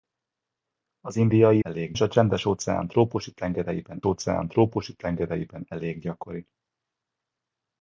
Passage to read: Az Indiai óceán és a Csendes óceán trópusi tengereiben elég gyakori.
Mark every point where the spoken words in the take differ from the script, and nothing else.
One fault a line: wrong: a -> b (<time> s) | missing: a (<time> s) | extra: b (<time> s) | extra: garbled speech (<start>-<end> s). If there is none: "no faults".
wrong: óceán -> elég (1.6 s)
extra: óceán trópusi tengereiben (4.0 s)